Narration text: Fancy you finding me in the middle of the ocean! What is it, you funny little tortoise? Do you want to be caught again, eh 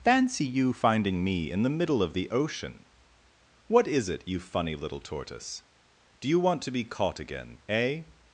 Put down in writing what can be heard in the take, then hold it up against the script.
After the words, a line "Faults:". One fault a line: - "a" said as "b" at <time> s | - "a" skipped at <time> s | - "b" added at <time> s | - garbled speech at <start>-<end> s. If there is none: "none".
Fancy you finding me in the middle of the ocean! What is it, you funny little tortoise? Do you want to be caught again, eh
Faults:
none